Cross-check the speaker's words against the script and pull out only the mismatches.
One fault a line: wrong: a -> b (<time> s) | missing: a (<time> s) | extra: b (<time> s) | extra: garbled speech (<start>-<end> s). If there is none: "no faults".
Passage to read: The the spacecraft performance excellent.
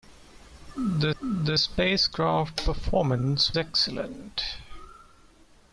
no faults